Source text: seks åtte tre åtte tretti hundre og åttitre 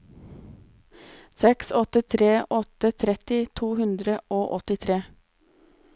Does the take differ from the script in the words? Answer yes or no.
yes